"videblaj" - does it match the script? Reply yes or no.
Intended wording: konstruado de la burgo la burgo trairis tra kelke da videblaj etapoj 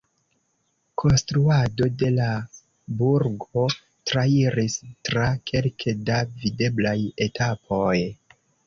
yes